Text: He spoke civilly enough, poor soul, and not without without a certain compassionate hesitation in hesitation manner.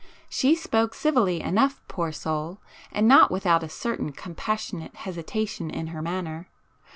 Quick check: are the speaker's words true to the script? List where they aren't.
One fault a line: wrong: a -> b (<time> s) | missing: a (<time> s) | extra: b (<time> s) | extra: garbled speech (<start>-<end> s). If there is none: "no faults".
wrong: He -> She (0.3 s)
missing: without (3.6 s)
wrong: hesitation -> her (5.9 s)